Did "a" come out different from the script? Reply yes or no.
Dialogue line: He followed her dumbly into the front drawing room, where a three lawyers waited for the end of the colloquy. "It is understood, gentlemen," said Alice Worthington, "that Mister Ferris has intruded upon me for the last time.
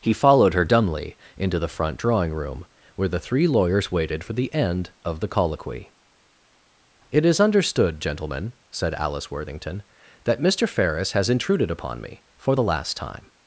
yes